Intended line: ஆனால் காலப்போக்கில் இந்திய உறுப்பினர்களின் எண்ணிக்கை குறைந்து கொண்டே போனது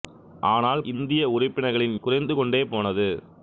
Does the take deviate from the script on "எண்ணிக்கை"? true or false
true